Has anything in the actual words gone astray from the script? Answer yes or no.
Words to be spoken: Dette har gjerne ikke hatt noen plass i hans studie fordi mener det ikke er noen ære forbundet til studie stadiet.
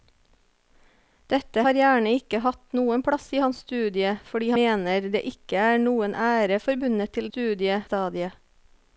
no